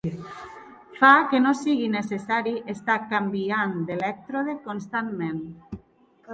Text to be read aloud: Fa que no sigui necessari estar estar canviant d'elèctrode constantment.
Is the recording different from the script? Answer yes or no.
yes